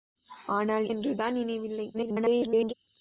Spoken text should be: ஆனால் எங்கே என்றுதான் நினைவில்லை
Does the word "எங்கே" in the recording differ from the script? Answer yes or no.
yes